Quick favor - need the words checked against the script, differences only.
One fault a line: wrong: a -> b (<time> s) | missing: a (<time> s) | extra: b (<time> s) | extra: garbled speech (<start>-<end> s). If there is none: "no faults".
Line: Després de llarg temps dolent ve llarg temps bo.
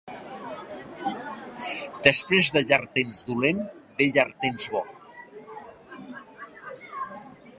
no faults